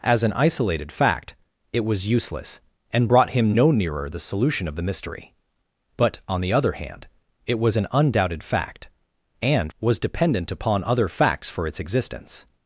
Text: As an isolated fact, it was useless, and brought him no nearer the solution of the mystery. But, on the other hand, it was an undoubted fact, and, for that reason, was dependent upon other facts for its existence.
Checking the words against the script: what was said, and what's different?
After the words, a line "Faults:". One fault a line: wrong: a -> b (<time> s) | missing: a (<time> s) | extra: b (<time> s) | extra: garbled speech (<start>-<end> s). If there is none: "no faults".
As an isolated fact, it was useless, and brought him no nearer the solution of the mystery. But, on the other hand, it was an undoubted fact, and, was dependent upon other facts for its existence.
Faults:
missing: for that reason (9.7 s)